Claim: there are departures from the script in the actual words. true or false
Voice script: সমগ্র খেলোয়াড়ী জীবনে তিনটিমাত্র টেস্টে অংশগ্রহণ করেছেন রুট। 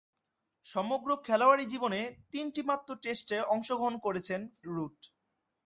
false